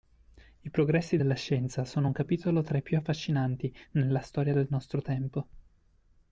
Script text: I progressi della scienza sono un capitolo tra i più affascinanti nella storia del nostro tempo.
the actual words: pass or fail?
pass